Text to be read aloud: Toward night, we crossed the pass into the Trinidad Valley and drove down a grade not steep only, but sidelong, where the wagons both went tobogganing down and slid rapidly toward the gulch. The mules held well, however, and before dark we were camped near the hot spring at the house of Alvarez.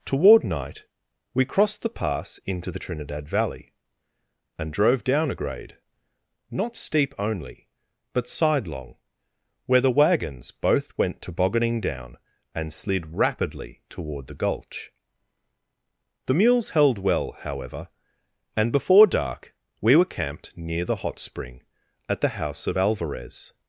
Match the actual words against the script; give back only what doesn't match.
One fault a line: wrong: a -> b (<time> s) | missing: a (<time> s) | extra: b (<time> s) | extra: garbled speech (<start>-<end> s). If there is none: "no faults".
no faults